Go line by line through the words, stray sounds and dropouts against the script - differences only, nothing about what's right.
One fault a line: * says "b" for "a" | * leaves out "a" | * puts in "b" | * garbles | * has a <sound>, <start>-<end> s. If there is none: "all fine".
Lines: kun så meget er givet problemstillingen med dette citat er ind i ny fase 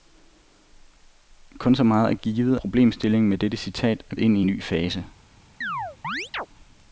* has a chirp, 5.6-6.5 s